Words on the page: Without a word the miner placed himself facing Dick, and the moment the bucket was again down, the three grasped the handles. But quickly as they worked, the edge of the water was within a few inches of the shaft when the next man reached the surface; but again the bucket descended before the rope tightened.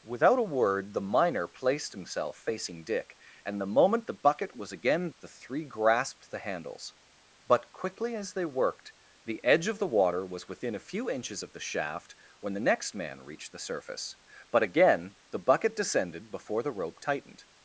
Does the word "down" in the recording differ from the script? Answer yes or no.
yes